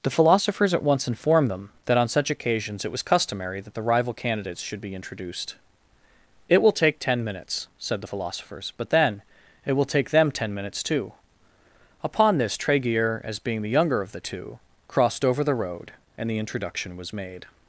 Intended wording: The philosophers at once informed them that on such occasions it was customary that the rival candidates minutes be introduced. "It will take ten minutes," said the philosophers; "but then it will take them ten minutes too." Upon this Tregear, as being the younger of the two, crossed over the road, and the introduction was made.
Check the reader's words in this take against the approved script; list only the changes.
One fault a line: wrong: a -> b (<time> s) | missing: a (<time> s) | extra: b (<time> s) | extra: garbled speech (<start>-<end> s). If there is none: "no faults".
wrong: minutes -> should (4.6 s)